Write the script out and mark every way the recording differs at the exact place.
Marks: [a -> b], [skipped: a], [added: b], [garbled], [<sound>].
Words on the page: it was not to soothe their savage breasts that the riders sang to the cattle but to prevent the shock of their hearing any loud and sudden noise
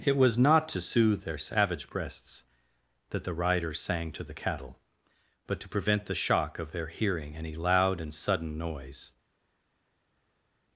it was not to soothe their savage breasts that the riders sang to the cattle but to prevent the shock of their hearing any loud and sudden noise